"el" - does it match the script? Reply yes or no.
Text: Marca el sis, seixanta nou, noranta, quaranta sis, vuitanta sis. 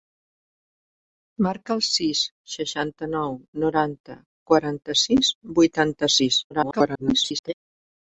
yes